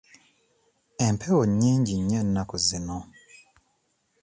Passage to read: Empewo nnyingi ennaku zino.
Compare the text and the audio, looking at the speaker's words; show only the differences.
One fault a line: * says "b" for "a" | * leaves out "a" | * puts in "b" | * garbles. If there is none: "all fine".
* puts in "nnyo"